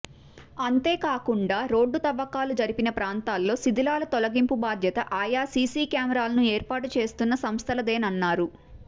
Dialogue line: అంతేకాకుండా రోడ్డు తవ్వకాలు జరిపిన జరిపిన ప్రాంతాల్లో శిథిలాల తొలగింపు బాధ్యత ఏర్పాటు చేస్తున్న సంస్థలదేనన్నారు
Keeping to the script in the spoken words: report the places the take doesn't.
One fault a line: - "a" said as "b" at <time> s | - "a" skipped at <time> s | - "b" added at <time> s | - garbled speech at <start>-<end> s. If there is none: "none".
- "జరిపిన" skipped at 2.9 s
- "ఆయా సీసీ కెమెరాలను" added at 5.2 s